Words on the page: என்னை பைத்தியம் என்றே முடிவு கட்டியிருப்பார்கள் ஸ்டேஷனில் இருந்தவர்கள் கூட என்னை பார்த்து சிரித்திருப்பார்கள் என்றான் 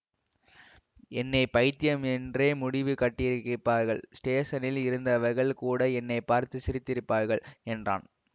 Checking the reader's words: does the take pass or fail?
pass